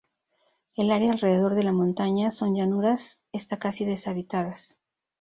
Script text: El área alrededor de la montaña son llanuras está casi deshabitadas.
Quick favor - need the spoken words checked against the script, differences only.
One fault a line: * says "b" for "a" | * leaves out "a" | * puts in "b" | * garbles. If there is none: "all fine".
all fine